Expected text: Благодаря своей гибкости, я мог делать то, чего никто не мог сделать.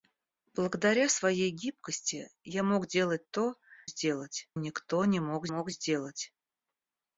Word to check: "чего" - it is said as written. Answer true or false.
false